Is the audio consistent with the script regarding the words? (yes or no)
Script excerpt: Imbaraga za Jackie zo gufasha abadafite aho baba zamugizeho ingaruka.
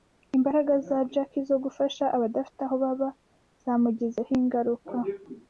yes